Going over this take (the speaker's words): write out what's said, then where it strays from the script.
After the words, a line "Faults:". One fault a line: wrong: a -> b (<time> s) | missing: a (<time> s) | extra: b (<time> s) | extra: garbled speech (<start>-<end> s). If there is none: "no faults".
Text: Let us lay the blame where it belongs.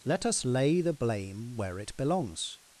Let us lay the blame where it belongs.
Faults:
no faults